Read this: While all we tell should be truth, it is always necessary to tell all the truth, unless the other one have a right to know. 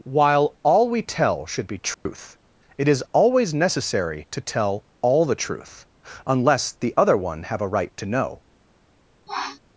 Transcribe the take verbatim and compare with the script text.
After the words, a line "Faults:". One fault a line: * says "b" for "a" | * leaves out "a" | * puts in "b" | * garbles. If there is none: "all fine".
While all we tell should be truth, it is always necessary to tell all the truth, unless the other one have a right to know.
Faults:
all fine